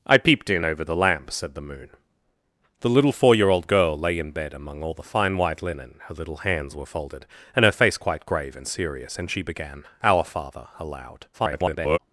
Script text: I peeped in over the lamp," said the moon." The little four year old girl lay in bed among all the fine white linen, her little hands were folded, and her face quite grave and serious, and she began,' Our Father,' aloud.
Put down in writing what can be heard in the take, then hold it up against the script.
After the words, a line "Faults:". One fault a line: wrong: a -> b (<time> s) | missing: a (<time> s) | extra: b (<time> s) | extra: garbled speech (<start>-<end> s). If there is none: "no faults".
I peeped in over the lamp," said the moon." The little four year old girl lay in bed among all the fine white linen, her little hands were folded, and her face quite grave and serious, and she began,' Our Father,' aloud. [garbled]
Faults:
extra: garbled speech (11.3-12.0 s)